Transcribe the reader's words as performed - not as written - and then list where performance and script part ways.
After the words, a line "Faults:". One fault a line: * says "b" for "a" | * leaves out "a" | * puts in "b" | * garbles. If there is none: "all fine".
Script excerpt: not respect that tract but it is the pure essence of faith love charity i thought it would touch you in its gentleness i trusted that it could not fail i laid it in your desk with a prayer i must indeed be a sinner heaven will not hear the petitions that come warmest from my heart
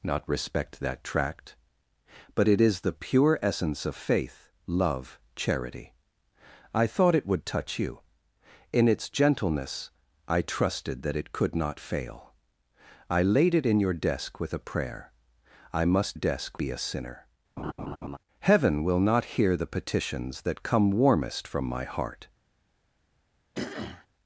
not respect that tract but it is the pure essence of faith love charity i thought it would touch you in its gentleness i trusted that it could not fail i laid it in your desk with a prayer i must desk be a sinner heaven will not hear the petitions that come warmest from my heart
Faults:
* says "desk" for "indeed"